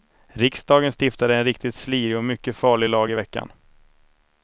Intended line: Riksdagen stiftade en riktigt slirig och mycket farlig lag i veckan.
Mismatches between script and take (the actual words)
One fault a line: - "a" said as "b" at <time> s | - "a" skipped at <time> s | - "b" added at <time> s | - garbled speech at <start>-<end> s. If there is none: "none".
none